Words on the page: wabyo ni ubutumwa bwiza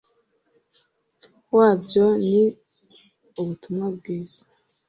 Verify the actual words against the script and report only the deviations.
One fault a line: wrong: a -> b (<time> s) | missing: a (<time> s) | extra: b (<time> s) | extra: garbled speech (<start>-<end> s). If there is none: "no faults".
no faults